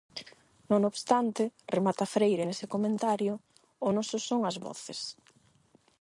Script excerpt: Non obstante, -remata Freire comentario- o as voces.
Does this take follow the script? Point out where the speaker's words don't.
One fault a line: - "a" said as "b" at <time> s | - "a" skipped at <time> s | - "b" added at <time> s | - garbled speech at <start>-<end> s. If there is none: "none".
- "nese" added at 2.4 s
- "noso son" added at 3.9 s